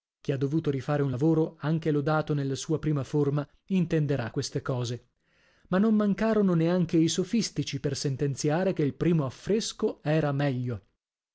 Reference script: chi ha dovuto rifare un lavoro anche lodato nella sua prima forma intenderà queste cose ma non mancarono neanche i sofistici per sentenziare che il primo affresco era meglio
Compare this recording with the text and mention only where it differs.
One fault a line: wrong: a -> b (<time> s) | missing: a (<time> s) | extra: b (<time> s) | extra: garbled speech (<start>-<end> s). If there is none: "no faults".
no faults